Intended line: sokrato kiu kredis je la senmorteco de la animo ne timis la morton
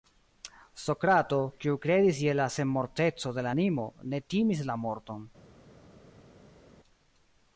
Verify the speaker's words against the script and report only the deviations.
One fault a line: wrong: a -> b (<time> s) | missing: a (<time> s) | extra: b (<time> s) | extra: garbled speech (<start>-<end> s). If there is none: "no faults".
no faults